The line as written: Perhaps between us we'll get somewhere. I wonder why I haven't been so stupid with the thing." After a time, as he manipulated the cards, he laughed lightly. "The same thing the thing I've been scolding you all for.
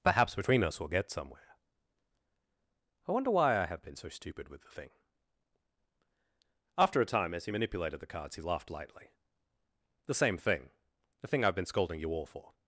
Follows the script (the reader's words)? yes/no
no